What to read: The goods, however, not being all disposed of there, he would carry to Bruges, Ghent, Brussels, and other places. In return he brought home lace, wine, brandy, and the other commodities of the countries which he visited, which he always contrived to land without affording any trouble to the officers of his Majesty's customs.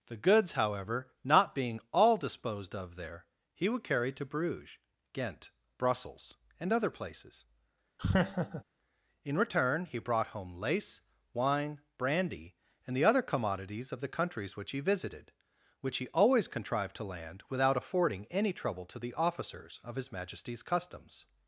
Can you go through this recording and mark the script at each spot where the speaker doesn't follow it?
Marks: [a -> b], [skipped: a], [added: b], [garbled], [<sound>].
The goods, however, not being all disposed of there, he would carry to Bruges, Ghent, Brussels, and other places. [laugh] In return he brought home lace, wine, brandy, and the other commodities of the countries which he visited, which he always contrived to land without affording any trouble to the officers of his Majesty's customs.